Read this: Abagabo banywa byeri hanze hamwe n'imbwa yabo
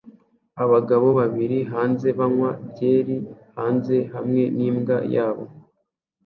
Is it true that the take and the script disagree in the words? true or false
true